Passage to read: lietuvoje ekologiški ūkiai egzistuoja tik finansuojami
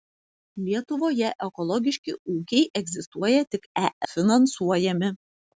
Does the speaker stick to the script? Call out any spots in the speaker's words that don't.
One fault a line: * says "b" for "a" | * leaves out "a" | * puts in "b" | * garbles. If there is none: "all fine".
all fine